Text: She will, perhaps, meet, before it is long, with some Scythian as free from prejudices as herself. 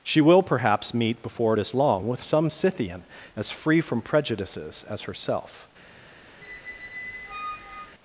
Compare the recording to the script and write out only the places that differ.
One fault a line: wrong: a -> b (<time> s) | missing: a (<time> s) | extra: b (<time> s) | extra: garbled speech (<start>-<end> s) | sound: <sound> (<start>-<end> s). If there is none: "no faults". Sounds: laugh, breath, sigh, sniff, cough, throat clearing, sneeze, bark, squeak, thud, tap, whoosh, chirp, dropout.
sound: squeak (6.4-8.0 s)